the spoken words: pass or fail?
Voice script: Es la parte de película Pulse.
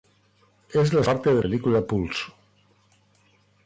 pass